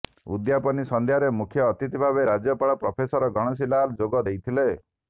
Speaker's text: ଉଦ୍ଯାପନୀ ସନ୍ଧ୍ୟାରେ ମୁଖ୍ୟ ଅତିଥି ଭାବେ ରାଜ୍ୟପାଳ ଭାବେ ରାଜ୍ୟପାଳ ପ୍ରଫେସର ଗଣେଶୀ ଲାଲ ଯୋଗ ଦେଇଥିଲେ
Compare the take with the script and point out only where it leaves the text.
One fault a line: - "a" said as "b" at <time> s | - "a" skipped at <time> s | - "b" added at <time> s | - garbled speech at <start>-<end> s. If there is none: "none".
- "ଭାବେ ରାଜ୍ୟପାଳ" skipped at 2.8 s